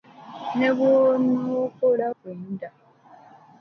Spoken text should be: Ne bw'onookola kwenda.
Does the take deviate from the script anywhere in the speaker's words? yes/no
no